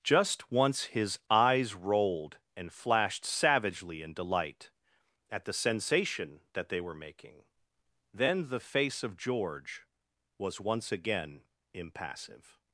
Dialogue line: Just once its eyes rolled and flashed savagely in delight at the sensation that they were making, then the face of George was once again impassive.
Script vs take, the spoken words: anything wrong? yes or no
yes